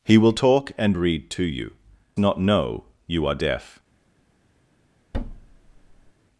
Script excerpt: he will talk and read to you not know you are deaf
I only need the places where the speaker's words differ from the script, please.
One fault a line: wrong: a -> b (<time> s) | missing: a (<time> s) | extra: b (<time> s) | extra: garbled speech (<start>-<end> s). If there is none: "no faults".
no faults